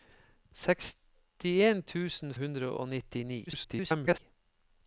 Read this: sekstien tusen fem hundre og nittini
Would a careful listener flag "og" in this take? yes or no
no